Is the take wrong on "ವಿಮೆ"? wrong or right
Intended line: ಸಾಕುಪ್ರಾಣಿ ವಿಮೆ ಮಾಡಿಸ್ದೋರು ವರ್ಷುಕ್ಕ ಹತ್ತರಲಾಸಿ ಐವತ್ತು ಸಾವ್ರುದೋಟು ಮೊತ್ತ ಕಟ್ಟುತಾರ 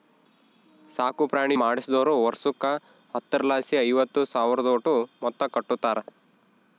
wrong